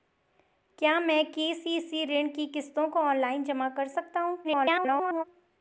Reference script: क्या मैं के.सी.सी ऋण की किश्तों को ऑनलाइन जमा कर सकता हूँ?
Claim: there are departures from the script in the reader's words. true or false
true